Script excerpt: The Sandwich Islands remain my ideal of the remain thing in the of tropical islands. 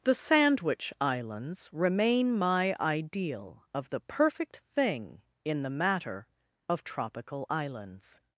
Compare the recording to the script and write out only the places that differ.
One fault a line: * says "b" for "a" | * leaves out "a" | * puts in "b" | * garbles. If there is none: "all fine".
* says "perfect" for "remain"
* puts in "matter"